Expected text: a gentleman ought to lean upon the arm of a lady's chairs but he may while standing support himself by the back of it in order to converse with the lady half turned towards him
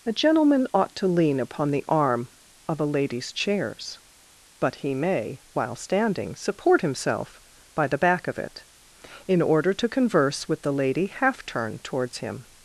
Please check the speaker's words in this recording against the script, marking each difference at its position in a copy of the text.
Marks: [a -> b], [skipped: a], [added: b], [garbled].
a gentleman ought to lean upon the arm of a lady's chairs but he may while standing support himself by the back of it in order to converse with the lady half turned towards him